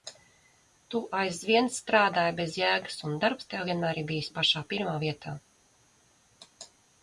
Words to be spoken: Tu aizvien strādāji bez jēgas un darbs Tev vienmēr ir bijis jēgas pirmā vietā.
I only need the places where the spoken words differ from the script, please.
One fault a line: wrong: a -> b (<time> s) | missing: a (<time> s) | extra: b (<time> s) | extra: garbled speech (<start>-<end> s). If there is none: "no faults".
wrong: jēgas -> pašā (4.4 s)